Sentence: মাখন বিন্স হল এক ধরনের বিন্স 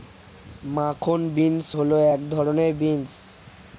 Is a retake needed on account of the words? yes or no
no